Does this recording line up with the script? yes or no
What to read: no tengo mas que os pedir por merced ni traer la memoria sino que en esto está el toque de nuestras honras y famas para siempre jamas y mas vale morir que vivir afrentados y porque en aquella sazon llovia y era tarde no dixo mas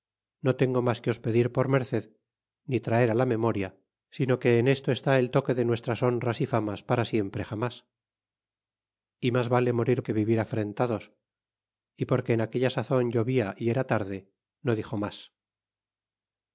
yes